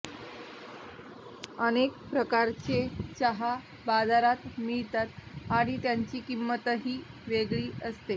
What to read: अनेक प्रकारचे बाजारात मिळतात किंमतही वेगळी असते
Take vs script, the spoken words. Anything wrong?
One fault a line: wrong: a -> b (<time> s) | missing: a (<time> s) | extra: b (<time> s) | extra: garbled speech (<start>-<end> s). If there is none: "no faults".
extra: चहा (3.1 s)
extra: आणि त्यांची (5.5 s)